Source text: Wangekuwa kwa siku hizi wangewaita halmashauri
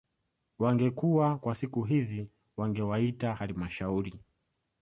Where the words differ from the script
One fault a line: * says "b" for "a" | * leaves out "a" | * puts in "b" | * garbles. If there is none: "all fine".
all fine